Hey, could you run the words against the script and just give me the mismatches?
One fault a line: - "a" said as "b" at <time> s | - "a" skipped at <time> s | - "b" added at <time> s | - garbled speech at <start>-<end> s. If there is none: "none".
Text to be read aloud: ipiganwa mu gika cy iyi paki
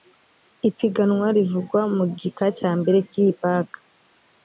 - "rivugwa" added at 1.4 s
- "cya mbere" added at 2.6 s